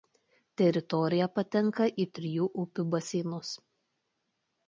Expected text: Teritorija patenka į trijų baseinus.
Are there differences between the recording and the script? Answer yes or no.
yes